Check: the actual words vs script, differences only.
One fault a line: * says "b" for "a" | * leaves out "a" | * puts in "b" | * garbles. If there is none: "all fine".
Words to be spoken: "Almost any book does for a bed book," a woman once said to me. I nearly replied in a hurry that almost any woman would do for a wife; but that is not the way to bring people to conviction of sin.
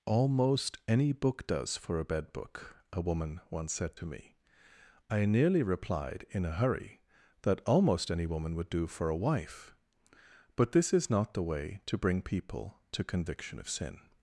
* says "this" for "that"